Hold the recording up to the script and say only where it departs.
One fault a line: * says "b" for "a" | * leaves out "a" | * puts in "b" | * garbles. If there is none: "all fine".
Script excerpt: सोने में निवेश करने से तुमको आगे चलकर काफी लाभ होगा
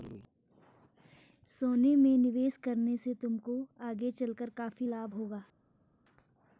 all fine